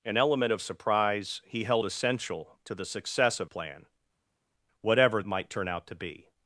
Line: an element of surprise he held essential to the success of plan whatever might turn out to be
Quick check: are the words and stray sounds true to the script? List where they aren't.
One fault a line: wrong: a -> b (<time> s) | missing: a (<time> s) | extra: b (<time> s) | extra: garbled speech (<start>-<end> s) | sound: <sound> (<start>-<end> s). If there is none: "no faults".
no faults